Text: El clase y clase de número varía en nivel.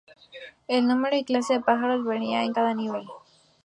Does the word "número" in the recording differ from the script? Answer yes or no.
yes